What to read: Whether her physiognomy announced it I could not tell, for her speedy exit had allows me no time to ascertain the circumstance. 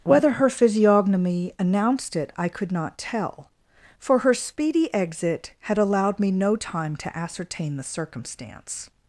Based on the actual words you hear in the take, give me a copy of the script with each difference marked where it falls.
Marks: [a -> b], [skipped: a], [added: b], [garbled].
Whether her physiognomy announced it I could not tell, for her speedy exit had [allows -> allowed] me no time to ascertain the circumstance.